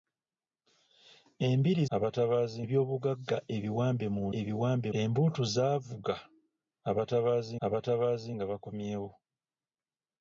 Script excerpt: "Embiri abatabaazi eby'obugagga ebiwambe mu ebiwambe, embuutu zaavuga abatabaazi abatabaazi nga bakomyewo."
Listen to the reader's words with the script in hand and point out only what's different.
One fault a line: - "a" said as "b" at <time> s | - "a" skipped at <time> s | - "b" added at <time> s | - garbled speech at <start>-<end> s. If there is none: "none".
none